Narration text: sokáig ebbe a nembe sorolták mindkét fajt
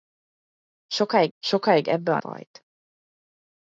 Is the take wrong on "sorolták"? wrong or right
wrong